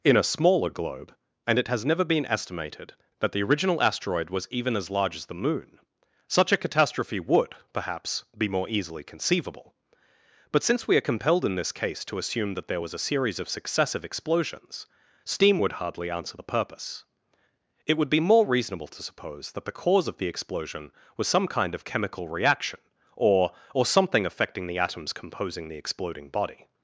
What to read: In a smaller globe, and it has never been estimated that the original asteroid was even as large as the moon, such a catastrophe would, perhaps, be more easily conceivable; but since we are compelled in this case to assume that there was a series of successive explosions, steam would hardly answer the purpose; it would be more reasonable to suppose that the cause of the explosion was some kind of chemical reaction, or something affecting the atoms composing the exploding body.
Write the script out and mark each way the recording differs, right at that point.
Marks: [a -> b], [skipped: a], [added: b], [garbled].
In a smaller globe, and it has never been estimated that the original asteroid was even as large as the moon, such a catastrophe would, perhaps, be more easily conceivable; but since we are compelled in this case to assume that there was a series of successive explosions, steam would hardly answer the purpose; it would be more reasonable to suppose that the cause of the explosion was some kind of chemical reaction, or [added: or] something affecting the atoms composing the exploding body.